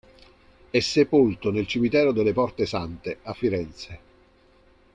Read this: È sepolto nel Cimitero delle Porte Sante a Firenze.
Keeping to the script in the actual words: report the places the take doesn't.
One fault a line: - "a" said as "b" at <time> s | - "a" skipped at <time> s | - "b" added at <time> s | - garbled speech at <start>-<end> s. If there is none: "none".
none